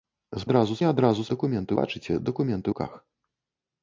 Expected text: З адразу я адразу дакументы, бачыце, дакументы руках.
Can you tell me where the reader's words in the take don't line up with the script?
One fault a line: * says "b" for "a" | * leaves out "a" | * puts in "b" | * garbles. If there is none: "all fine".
all fine